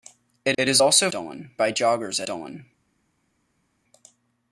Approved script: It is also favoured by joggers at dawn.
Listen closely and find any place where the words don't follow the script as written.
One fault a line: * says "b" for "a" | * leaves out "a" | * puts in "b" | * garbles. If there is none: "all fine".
* puts in "it"
* says "dawn" for "favoured"
* leaves out "at"